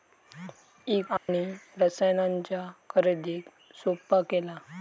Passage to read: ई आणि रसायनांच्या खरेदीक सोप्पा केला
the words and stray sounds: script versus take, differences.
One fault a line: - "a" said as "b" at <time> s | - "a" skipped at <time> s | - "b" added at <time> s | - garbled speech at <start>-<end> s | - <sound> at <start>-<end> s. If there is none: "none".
- dropout at 1.2-1.3 s